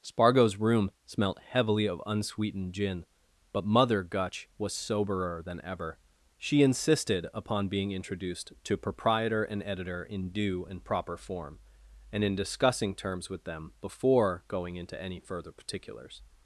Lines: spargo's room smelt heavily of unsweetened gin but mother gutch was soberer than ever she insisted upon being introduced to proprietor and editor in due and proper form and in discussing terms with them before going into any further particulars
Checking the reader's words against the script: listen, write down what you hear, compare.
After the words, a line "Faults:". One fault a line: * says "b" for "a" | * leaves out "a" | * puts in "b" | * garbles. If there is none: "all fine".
spargo's room smelt heavily of unsweetened gin but mother gutch was soberer than ever she insisted upon being introduced to proprietor and editor in due and proper form and in discussing terms with them before going into any further particulars
Faults:
all fine